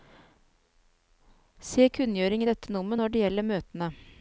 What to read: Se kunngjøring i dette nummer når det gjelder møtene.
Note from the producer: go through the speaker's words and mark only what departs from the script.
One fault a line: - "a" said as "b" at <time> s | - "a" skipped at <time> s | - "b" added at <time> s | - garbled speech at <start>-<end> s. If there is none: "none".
none